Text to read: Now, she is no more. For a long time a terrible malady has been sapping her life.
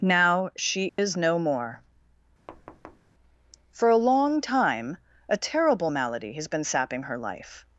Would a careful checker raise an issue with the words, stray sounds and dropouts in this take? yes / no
yes